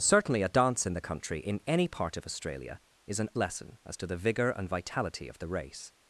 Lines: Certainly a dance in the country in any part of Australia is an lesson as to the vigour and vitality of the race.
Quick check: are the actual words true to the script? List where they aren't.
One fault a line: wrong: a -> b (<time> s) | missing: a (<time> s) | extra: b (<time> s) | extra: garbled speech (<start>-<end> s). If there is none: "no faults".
no faults